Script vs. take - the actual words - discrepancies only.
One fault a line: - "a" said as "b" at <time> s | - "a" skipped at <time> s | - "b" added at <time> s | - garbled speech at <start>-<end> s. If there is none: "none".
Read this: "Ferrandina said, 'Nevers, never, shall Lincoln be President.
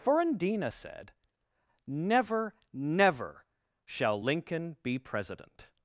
- "Nevers" said as "Never" at 1.8 s